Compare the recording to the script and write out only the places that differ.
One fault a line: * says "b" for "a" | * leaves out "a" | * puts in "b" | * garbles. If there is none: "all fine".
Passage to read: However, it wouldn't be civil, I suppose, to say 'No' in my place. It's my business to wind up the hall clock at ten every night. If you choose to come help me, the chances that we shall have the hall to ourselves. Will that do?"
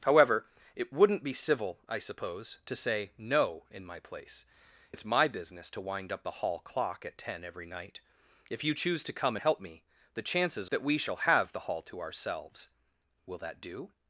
all fine